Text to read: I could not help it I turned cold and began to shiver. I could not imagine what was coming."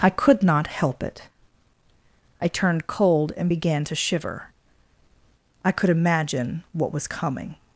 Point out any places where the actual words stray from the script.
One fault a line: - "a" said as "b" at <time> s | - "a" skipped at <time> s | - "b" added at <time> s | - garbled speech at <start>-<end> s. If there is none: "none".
- "not" skipped at 5.9 s